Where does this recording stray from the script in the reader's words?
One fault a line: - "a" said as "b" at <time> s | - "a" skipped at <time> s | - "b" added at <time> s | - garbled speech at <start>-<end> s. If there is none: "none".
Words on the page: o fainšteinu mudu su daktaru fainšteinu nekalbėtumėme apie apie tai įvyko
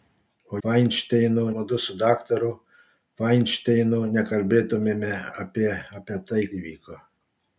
none